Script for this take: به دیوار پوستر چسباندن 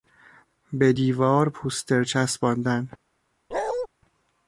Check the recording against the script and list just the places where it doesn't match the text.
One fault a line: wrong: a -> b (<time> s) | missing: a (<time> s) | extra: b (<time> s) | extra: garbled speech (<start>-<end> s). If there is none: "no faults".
no faults